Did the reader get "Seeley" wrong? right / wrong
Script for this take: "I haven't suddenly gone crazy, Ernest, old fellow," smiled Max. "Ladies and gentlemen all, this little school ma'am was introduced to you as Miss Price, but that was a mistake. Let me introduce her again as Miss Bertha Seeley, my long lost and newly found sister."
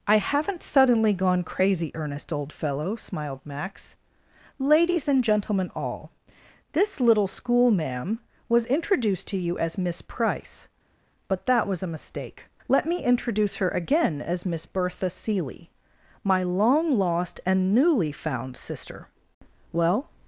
right